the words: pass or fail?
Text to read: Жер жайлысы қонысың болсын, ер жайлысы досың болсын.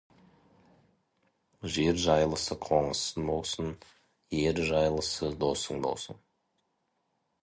pass